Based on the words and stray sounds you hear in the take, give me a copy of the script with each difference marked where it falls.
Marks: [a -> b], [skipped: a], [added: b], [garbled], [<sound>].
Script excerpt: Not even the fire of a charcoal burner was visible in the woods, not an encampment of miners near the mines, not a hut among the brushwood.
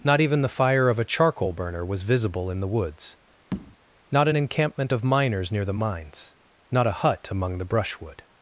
Not even the fire of a charcoal burner was visible in the woods, [tap] not an encampment of miners near the mines, not a hut among the brushwood.